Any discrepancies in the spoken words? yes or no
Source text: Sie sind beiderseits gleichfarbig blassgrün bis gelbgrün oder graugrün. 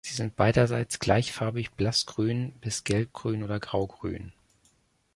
no